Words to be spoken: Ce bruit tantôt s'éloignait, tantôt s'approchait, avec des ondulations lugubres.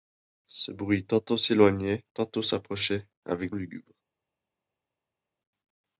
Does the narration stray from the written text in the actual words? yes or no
yes